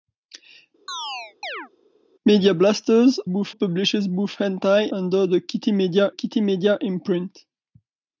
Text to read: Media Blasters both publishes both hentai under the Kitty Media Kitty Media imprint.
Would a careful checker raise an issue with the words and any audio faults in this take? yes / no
yes